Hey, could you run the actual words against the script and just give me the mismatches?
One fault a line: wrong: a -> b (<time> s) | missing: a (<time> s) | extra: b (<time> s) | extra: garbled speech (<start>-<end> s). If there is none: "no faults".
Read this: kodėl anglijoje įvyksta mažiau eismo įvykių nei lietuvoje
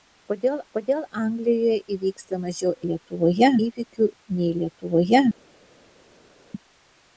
extra: kodėl (0.7 s)
wrong: eismo -> lietuvoje (2.9 s)